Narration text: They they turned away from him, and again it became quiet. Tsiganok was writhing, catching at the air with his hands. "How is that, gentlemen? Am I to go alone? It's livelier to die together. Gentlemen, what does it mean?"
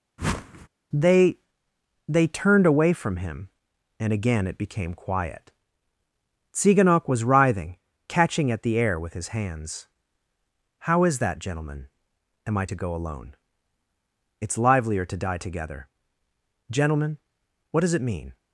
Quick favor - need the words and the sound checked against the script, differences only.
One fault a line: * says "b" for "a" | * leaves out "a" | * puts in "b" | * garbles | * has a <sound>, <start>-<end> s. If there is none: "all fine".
* has a whoosh, 0.2-0.7 s